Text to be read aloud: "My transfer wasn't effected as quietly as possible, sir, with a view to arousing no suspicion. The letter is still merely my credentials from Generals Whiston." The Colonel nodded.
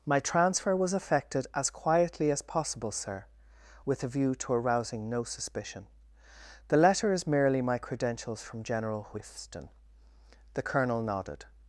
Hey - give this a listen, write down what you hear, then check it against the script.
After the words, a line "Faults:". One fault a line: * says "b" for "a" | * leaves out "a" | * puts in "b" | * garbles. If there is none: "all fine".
"My transfer was effected as quietly as possible, sir, with a view to arousing no suspicion. The letter is merely my credentials from General Whiston." The Colonel nodded.
Faults:
* says "was" for "wasn't"
* leaves out "still"
* says "General" for "Generals"